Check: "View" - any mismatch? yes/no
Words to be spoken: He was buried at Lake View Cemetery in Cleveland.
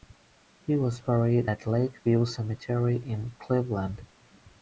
no